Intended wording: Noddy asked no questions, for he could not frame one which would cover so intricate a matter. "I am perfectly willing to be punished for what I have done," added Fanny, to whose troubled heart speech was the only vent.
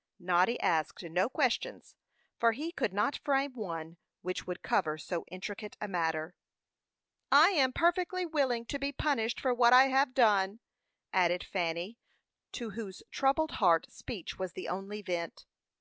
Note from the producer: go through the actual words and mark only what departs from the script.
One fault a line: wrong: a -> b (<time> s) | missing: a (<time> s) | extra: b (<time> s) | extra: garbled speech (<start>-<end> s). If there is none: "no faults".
no faults